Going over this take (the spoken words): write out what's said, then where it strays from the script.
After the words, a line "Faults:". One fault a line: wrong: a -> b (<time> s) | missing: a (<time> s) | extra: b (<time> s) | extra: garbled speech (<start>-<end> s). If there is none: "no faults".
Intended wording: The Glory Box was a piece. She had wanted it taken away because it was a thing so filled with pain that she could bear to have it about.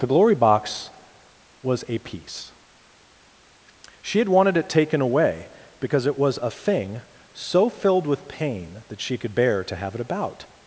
The Glory Box was a piece. She had wanted it taken away because it was a thing so filled with pain that she could bear to have it about.
Faults:
no faults